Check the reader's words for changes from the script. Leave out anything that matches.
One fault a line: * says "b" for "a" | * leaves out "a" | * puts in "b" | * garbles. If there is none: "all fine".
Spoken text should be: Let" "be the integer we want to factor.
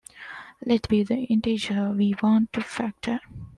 all fine